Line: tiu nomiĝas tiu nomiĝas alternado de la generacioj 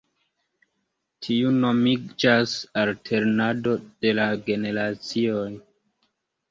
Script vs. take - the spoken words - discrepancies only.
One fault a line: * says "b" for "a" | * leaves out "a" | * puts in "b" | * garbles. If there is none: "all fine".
* leaves out "tiu nomiĝas"